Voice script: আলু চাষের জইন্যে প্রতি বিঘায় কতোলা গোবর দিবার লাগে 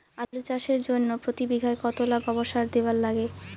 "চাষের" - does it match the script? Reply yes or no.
yes